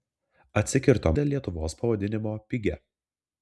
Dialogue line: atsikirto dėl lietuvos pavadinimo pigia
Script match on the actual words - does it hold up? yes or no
yes